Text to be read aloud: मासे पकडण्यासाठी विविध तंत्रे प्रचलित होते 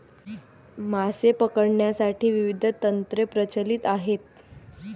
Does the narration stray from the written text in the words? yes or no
yes